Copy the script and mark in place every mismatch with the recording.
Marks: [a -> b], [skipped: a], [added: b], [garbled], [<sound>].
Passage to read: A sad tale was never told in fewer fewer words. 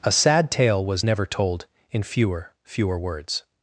A sad tale was never told in fewer fewer words.